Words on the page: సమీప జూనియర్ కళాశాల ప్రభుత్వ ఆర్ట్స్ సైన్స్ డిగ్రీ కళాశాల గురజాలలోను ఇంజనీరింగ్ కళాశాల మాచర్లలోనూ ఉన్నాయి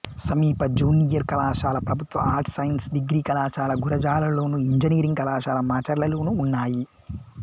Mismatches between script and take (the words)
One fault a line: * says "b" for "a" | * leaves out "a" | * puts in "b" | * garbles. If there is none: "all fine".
all fine